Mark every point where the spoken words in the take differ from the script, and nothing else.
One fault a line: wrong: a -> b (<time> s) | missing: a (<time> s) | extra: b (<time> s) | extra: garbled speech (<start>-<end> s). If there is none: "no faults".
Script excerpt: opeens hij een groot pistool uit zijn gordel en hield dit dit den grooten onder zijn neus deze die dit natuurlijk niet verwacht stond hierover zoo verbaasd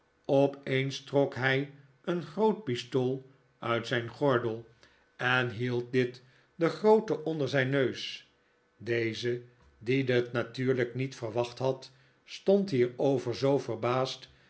extra: trok (1.0 s)
missing: dit (6.2 s)
extra: had (11.6 s)